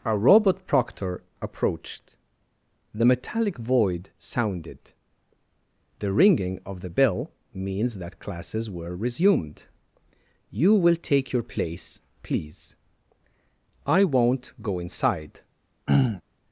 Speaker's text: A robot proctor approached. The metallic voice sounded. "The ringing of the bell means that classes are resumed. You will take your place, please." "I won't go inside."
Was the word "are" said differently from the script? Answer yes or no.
yes